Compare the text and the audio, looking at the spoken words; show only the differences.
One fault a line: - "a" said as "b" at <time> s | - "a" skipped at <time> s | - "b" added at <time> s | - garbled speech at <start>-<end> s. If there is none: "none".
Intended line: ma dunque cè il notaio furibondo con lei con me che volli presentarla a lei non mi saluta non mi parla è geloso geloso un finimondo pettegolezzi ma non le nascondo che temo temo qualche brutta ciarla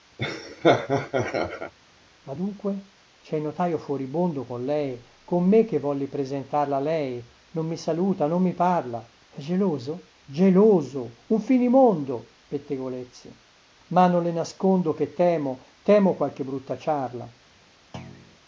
none